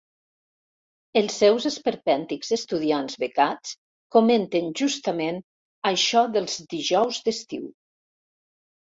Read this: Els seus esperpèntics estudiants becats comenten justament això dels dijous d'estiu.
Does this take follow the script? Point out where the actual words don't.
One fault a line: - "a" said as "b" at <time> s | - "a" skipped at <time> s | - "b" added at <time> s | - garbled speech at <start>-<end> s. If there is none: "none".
none